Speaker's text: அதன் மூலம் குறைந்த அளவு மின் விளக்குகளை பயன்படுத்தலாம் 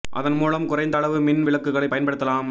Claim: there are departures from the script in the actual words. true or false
false